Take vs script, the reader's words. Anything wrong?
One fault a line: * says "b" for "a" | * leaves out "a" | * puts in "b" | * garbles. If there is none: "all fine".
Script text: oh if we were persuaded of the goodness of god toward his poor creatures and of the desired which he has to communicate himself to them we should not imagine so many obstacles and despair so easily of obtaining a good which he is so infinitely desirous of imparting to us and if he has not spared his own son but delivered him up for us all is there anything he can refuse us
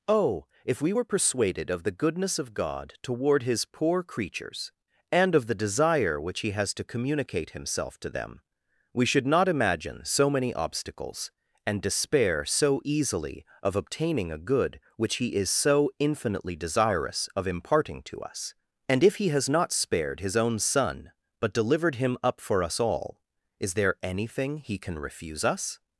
* says "desire" for "desired"